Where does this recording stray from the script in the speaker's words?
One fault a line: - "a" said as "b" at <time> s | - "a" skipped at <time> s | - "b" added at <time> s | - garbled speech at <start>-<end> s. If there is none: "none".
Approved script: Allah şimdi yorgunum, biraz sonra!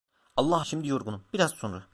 none